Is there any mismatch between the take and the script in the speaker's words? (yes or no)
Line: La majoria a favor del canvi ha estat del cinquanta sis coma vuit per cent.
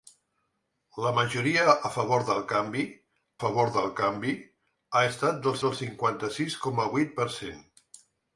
yes